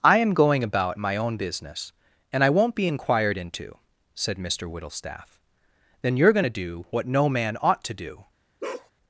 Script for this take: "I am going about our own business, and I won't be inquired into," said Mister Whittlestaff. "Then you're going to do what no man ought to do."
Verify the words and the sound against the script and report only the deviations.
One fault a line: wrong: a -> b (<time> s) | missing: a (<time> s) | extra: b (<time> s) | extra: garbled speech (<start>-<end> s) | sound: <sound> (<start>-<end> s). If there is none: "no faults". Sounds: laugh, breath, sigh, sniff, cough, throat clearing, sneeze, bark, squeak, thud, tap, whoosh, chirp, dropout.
wrong: our -> my (1.0 s)
sound: bark (8.6-8.9 s)